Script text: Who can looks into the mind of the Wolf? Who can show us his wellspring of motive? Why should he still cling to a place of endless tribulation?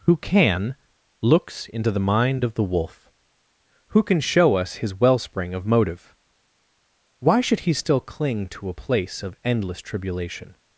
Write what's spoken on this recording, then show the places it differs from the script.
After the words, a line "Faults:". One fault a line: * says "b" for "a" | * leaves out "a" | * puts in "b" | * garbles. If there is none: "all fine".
Who can looks into the mind of the Wolf? Who can show us his wellspring of motive? Why should he still cling to a place of endless tribulation?
Faults:
all fine